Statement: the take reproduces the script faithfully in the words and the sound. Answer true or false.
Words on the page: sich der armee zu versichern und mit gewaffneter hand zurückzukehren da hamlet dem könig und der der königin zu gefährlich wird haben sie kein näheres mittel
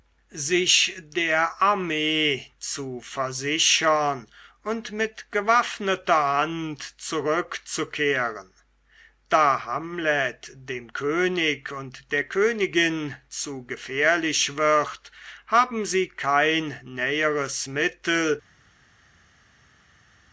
false